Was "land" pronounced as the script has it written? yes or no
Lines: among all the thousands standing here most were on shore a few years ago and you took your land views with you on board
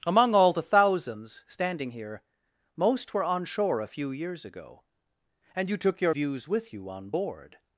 no